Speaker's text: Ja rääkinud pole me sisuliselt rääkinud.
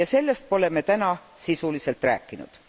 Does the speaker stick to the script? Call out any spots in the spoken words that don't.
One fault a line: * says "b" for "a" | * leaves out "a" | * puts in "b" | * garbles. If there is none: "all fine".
* says "sellest" for "rääkinud"
* puts in "täna"